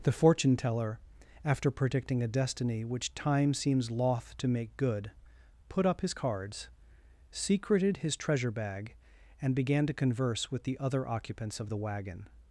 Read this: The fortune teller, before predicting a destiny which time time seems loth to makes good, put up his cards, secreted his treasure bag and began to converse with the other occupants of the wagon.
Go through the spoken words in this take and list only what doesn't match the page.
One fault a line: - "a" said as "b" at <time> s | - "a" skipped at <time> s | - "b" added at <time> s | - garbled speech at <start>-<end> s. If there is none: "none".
- "before" said as "after" at 1.4 s
- "time" skipped at 3.5 s
- "makes" said as "make" at 4.5 s